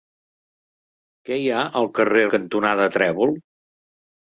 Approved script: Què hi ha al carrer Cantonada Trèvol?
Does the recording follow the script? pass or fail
pass